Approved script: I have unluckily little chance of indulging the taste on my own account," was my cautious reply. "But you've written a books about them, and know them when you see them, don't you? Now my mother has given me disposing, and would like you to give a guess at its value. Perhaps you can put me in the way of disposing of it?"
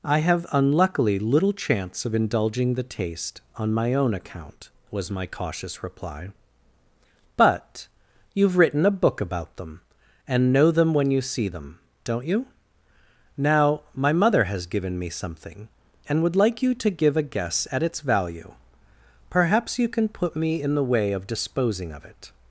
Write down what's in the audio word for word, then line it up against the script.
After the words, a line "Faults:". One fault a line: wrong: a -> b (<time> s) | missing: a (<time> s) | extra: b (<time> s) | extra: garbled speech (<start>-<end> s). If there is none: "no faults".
I have unluckily little chance of indulging the taste on my own account," was my cautious reply. "But you've written a book about them, and know them when you see them, don't you? Now my mother has given me something, and would like you to give a guess at its value. Perhaps you can put me in the way of disposing of it?"
Faults:
wrong: books -> book (9.0 s)
wrong: disposing -> something (15.1 s)